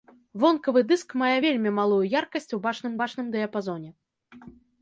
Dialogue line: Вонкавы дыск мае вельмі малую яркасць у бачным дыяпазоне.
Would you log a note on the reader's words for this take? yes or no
yes